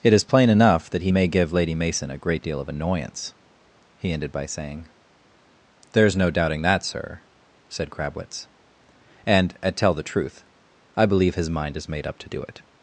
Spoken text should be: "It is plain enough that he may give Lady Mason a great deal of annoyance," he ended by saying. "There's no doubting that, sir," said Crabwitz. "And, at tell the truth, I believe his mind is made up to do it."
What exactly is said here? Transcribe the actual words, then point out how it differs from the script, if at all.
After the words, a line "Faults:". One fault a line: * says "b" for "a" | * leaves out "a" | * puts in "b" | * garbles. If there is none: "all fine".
"It is plain enough that he may give Lady Mason a great deal of annoyance," he ended by saying. "There's no doubting that, sir," said Crabwitz. "And, at tell the truth, I believe his mind is made up to do it."
Faults:
all fine